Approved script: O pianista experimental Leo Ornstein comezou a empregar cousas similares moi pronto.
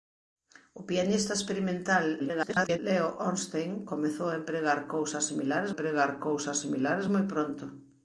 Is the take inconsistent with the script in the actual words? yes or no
yes